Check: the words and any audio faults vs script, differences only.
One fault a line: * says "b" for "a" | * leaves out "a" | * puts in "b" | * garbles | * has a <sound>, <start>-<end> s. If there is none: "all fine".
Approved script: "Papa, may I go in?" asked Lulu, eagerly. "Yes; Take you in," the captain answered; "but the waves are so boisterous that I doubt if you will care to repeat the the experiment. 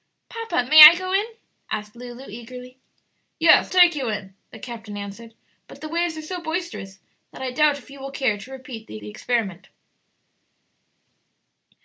all fine